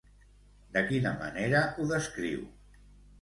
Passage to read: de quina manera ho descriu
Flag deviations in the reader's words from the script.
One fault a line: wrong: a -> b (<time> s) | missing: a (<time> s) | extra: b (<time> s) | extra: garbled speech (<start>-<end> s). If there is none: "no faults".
no faults